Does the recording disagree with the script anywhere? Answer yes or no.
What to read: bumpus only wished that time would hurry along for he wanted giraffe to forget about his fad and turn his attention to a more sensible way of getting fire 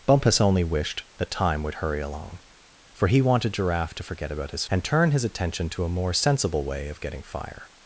yes